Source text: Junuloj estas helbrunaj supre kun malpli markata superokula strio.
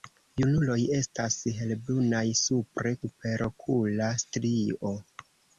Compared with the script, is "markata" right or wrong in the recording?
wrong